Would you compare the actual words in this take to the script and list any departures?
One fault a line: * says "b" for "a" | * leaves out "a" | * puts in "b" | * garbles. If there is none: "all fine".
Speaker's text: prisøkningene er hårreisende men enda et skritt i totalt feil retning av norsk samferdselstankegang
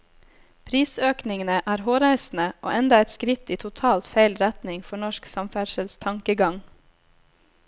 * says "og" for "men"
* says "for" for "av"